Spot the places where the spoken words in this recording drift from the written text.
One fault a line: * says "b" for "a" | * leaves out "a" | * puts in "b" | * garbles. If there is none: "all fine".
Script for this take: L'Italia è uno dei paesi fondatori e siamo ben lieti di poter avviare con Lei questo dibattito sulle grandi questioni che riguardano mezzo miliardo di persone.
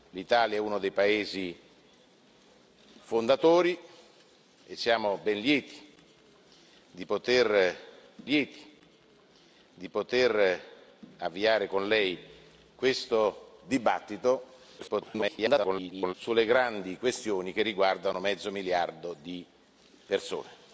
* puts in "lieti di poter"
* garbles